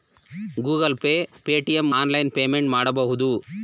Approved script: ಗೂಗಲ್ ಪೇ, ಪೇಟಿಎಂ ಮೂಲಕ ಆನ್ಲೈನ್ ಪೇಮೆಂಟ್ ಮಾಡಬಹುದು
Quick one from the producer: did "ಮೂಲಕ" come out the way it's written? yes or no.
no